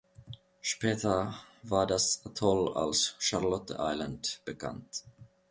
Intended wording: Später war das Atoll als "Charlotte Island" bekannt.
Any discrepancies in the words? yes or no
no